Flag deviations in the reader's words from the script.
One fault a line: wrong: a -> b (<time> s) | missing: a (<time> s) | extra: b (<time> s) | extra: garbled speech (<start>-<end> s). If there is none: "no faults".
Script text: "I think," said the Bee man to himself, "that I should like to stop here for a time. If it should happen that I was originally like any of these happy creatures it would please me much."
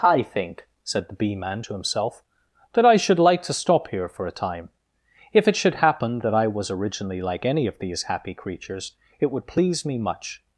no faults